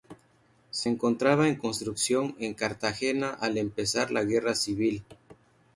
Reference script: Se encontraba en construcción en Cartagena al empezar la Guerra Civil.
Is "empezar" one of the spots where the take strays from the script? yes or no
no